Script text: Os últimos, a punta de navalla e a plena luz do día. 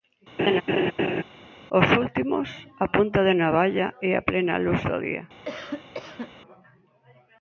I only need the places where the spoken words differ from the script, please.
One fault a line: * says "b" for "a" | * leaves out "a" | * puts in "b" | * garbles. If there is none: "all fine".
all fine